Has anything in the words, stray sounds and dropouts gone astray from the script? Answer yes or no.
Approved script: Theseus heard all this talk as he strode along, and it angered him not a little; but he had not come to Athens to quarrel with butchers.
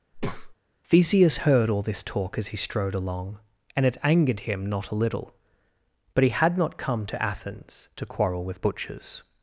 yes